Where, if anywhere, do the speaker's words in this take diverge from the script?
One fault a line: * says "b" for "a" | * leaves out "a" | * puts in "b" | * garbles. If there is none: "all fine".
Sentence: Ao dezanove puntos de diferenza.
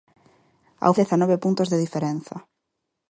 all fine